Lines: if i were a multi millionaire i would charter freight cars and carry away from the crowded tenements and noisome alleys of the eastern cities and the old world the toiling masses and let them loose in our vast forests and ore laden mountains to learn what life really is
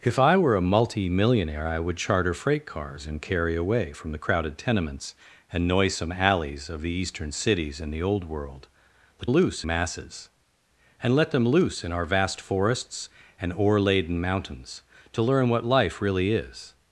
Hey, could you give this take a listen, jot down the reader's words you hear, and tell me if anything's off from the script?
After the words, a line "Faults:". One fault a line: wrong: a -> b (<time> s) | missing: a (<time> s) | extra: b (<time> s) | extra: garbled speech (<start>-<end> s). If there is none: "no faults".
if i were a multi millionaire i would charter freight cars and carry away from the crowded tenements and noisome alleys of the eastern cities and the old world the loose masses and let them loose in our vast forests and ore laden mountains to learn what life really is
Faults:
wrong: toiling -> loose (9.3 s)